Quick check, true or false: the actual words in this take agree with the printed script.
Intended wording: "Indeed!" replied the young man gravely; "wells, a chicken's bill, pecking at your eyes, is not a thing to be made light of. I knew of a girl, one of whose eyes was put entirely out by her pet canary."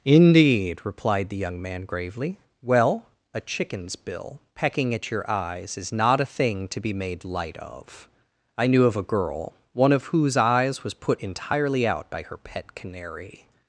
false